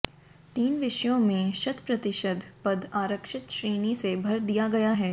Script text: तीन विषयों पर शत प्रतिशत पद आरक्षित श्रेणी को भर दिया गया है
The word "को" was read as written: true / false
false